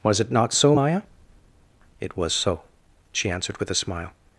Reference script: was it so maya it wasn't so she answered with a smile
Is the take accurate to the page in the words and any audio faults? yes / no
no